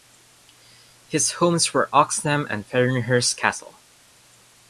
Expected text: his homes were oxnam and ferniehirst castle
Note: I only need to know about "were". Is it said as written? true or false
true